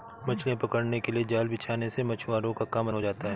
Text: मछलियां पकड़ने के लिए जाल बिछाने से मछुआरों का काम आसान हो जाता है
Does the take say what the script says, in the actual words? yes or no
no